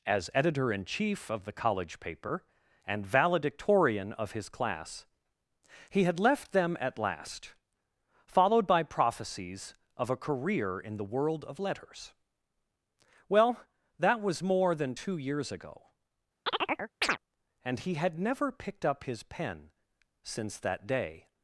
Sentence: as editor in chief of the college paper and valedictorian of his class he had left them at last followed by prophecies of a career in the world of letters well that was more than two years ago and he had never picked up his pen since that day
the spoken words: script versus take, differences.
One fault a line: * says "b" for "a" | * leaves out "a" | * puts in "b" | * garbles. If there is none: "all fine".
all fine